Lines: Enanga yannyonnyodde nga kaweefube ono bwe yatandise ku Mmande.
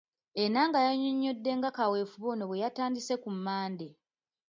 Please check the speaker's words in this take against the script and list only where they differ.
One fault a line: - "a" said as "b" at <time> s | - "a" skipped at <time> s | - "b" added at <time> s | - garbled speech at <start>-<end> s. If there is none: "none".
none